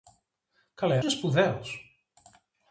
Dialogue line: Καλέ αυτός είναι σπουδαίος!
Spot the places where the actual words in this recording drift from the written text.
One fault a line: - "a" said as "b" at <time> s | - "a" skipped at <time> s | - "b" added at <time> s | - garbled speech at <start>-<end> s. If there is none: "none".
- "αυτός" skipped at 1.0 s